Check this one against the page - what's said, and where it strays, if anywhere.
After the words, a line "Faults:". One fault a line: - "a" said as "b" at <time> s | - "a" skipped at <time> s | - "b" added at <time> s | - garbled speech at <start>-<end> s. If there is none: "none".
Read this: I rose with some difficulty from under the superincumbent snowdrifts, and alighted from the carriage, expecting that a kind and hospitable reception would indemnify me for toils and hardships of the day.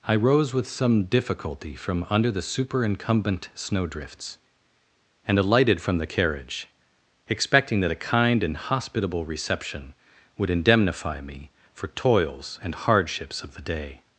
I rose with some difficulty from under the superincumbent snowdrifts, and alighted from the carriage, expecting that a kind and hospitable reception would indemnify me for toils and hardships of the day.
Faults:
none